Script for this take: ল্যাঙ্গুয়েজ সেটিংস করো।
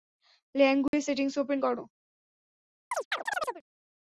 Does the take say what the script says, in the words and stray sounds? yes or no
no